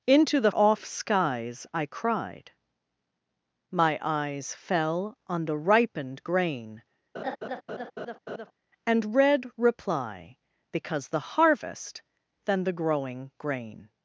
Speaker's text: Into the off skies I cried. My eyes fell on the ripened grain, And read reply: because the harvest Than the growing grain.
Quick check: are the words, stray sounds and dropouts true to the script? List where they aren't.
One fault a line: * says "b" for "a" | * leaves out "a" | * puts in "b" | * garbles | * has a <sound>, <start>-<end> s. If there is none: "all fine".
* has a laugh, 7.1-8.5 s